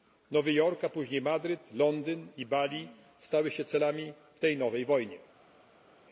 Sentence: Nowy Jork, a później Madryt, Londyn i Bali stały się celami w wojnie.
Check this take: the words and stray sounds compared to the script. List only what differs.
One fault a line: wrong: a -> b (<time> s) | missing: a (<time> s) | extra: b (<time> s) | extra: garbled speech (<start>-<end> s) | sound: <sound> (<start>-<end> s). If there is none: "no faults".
extra: tej nowej (4.4 s)